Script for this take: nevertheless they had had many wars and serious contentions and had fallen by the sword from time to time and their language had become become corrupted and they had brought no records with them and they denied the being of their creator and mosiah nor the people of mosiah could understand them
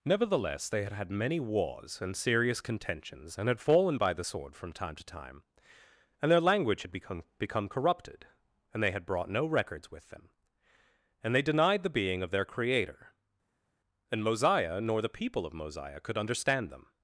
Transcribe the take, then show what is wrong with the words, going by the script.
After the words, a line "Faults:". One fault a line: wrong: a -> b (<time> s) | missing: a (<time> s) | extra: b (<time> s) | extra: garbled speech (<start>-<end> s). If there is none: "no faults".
nevertheless they had had many wars and serious contentions and had fallen by the sword from time to time and their language had become become corrupted and they had brought no records with them and they denied the being of their creator and mosiah nor the people of mosiah could understand them
Faults:
no faults